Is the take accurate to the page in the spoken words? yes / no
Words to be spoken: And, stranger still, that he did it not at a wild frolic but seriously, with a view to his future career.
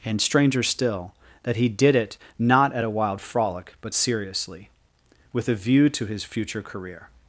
yes